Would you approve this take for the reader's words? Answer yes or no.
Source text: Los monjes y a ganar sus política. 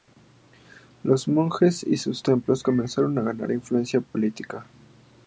no